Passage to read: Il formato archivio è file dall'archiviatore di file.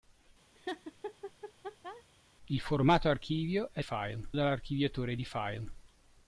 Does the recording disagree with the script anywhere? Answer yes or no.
no